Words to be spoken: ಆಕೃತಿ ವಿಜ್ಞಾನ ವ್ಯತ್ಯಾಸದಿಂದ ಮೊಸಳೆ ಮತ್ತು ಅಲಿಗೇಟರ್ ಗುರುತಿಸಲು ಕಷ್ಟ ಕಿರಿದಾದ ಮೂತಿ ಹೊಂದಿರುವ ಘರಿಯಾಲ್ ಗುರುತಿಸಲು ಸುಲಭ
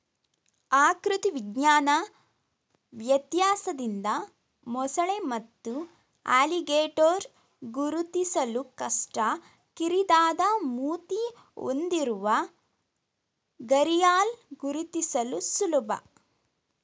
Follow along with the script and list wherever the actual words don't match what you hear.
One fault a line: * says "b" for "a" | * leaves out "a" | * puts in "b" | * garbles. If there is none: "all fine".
all fine